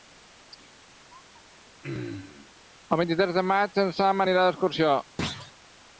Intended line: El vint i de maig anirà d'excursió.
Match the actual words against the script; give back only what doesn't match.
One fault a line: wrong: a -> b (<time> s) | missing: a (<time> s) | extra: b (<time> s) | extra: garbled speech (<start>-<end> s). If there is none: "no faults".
extra: tres (3.2 s)
extra: en Sam (3.9 s)